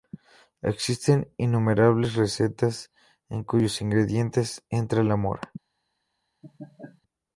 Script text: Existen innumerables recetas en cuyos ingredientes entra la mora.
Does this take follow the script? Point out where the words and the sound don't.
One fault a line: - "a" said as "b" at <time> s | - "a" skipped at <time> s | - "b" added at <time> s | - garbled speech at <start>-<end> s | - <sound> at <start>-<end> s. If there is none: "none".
- laugh at 6.4-7.0 s